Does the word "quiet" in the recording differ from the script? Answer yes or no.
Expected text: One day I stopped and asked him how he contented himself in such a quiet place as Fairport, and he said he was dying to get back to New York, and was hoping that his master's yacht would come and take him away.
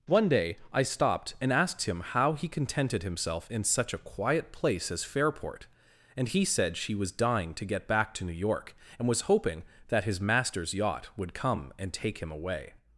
no